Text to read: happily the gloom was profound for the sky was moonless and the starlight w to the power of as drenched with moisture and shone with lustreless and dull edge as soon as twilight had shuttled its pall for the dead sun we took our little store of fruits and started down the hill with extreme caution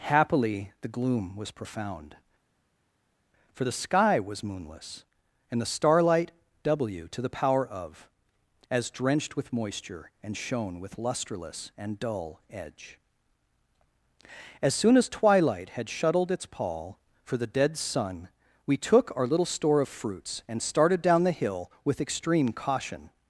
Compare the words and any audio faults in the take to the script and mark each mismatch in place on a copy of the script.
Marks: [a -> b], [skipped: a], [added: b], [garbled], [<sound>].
happily the gloom was profound for the sky was moonless and the starlight w to the power of as drenched with moisture and shone with lustreless and dull edge as soon as twilight had shuttled its pall for the dead sun we took our little store of fruits and started down the hill with extreme caution